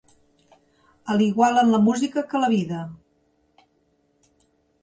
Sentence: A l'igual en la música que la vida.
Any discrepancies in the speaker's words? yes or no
no